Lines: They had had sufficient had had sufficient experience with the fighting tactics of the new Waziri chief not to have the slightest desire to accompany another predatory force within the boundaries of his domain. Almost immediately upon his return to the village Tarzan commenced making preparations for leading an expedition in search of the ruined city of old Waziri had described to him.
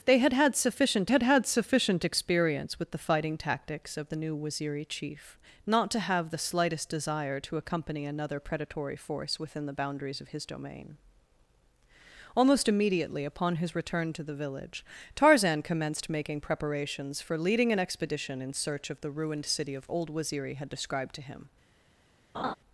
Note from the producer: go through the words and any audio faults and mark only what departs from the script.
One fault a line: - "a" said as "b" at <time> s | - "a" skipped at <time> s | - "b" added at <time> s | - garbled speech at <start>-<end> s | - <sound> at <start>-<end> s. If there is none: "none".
- laugh at 22.3-22.5 s